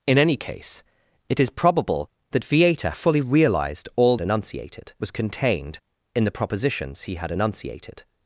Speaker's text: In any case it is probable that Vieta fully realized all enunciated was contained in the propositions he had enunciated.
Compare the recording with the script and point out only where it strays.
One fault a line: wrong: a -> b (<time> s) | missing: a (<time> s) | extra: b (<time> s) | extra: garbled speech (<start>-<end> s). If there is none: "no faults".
no faults